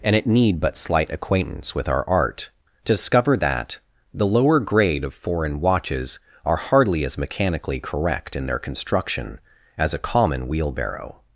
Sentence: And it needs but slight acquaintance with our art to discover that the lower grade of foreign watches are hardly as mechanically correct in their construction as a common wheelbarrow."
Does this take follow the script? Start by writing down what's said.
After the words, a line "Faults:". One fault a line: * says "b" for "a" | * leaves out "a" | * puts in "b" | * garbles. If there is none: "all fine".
And it need but slight acquaintance with our art to discover that the lower grade of foreign watches are hardly as mechanically correct in their construction as a common wheelbarrow."
Faults:
* says "need" for "needs"